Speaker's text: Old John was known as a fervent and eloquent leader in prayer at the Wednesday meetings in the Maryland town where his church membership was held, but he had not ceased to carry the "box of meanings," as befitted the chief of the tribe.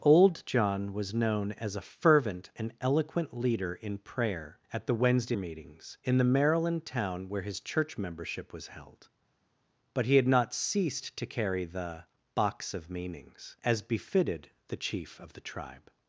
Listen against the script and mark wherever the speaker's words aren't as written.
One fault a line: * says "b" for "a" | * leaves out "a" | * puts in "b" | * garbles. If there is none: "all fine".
all fine